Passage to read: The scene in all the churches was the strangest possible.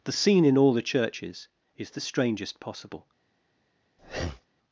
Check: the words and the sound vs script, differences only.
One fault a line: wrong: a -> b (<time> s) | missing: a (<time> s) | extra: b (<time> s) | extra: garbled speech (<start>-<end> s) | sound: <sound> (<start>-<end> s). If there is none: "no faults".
wrong: was -> is (1.8 s)
sound: breath (4.0-4.5 s)